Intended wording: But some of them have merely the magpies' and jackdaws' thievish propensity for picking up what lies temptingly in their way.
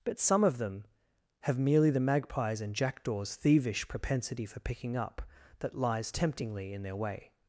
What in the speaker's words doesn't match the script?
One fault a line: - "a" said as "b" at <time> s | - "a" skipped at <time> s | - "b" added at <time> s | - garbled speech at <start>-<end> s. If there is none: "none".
- "what" said as "that" at 5.6 s